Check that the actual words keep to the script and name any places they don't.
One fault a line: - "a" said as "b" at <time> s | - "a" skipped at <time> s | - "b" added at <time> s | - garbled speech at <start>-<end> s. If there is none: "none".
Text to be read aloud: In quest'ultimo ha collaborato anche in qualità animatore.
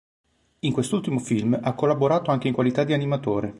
- "film" added at 1.2 s
- "di" added at 2.8 s